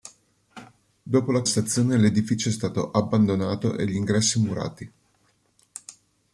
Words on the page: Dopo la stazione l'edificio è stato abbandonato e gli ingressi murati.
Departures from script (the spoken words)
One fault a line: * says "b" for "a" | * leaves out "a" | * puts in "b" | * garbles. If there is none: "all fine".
all fine